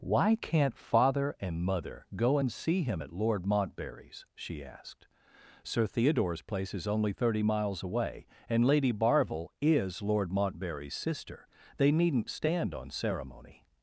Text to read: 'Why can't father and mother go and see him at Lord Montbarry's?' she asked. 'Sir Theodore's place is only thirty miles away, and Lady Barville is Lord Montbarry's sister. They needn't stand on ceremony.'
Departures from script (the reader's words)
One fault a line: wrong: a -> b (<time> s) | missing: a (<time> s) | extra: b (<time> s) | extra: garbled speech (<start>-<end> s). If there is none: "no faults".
no faults